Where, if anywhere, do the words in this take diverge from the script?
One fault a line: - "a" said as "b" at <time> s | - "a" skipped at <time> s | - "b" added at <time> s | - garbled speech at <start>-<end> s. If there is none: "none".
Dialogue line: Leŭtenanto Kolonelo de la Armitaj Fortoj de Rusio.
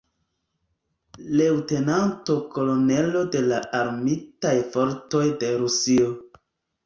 none